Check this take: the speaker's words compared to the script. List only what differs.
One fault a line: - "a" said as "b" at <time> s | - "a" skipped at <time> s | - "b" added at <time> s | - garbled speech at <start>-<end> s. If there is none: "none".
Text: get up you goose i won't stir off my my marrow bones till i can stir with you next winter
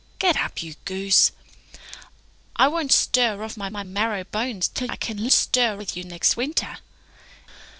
none